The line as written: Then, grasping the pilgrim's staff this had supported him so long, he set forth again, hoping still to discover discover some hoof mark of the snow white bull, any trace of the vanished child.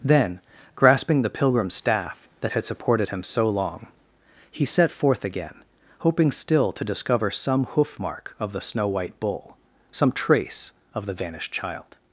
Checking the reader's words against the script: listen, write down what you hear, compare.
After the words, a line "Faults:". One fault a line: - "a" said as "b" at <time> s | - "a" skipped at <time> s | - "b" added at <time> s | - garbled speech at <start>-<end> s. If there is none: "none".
Then, grasping the pilgrim's staff that had supported him so long, he set forth again, hoping still to discover some hoof mark of the snow white bull, some trace of the vanished child.
Faults:
- "this" said as "that" at 2.4 s
- "discover" skipped at 7.3 s
- "any" said as "some" at 9.9 s